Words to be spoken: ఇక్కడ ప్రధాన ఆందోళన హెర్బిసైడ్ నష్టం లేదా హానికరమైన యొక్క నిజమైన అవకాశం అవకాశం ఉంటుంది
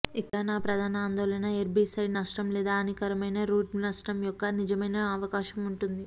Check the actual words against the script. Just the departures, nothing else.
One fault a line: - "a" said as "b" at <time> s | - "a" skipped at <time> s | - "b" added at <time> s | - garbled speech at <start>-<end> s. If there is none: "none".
- "నా" added at 0.4 s
- "రూట్ నష్టం" added at 3.4 s
- "అవకాశం" skipped at 5.6 s